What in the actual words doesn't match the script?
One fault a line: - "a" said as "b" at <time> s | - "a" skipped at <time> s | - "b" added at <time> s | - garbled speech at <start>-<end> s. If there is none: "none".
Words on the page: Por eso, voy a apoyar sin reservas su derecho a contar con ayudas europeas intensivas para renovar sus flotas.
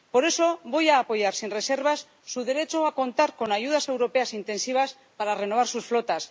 none